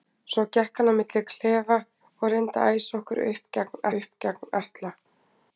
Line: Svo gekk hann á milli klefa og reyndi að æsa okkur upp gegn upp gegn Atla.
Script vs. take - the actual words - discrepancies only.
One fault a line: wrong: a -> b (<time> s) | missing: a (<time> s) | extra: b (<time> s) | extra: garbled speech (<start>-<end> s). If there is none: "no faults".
no faults